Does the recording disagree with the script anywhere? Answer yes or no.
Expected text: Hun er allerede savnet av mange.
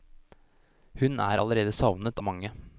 yes